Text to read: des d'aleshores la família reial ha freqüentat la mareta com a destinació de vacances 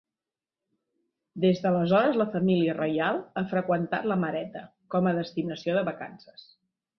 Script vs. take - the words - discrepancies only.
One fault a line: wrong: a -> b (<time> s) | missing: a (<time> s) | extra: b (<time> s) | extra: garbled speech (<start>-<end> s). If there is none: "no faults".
no faults